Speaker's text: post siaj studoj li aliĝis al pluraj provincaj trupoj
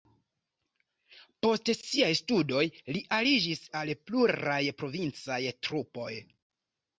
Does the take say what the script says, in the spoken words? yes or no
yes